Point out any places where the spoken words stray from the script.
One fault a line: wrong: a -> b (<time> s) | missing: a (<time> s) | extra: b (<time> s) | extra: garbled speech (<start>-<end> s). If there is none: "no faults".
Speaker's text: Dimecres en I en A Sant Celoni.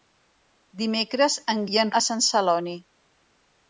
no faults